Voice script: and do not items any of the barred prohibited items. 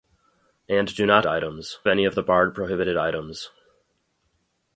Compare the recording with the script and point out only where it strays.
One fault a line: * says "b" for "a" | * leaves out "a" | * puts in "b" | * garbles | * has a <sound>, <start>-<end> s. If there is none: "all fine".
all fine